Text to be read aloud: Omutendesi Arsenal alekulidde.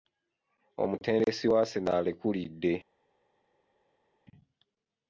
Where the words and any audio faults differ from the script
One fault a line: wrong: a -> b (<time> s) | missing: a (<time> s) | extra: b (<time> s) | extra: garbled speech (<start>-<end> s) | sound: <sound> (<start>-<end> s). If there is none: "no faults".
extra: wa (1.5 s)